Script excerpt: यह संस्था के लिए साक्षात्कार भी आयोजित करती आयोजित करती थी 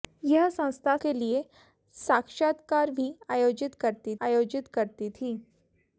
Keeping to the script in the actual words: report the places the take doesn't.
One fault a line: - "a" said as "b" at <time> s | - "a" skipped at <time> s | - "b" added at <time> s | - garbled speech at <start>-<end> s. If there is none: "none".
none